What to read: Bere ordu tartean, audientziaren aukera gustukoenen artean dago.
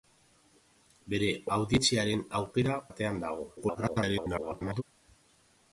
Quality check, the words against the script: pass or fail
fail